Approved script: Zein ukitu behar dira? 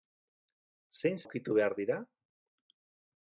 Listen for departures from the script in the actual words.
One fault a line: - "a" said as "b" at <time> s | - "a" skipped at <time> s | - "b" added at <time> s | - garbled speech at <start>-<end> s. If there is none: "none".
none